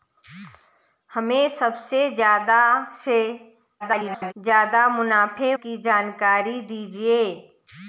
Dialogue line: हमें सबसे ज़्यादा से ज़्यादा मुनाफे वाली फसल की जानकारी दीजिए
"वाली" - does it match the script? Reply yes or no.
no